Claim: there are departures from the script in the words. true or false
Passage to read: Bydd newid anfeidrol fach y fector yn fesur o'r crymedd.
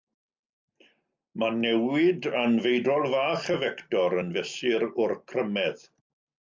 true